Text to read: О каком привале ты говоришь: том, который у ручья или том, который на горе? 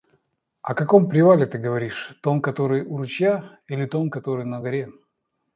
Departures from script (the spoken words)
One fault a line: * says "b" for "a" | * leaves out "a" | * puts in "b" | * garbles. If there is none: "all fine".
all fine